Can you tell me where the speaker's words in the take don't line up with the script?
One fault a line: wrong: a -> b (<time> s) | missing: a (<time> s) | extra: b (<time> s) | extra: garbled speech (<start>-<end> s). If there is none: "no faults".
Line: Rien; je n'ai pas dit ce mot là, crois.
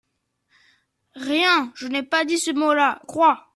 no faults